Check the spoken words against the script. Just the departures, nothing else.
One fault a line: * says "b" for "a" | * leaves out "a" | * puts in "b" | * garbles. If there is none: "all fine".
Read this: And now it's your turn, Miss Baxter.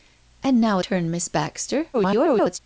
* leaves out "it's your"
* garbles